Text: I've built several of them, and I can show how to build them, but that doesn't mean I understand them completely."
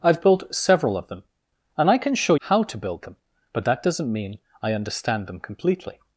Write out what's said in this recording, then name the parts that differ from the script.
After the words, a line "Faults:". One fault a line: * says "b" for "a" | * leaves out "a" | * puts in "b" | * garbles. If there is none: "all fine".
I've built several of them, and I can show how to build them, but that doesn't mean I understand them completely."
Faults:
all fine